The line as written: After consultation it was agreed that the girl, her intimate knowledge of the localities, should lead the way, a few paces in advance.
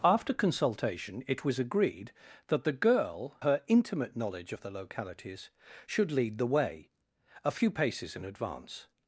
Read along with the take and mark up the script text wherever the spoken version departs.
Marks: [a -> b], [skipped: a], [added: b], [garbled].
After consultation it was agreed that the girl, her intimate knowledge of the localities, should lead the way, a few paces in advance.